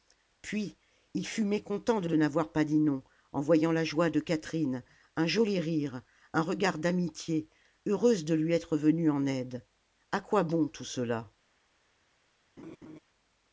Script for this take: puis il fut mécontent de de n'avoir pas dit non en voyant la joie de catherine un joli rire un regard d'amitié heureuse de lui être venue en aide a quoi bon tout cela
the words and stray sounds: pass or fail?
fail